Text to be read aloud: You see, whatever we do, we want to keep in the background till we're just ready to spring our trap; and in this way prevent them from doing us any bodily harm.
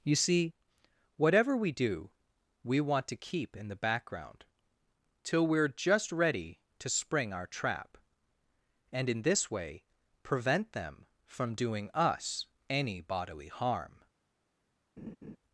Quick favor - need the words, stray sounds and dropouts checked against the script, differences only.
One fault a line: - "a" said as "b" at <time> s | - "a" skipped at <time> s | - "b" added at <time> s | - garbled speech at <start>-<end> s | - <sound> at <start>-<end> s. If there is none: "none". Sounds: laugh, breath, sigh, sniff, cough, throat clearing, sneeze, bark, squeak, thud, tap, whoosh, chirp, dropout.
- laugh at 15.0-15.4 s